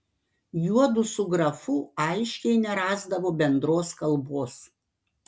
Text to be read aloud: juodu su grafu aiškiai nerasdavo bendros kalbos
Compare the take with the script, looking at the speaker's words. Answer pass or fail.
pass